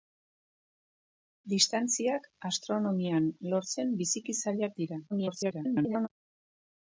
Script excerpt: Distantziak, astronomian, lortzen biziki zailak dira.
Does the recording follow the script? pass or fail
fail